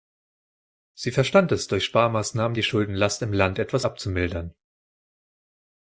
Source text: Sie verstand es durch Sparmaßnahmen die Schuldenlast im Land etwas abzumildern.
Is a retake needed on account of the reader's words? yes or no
no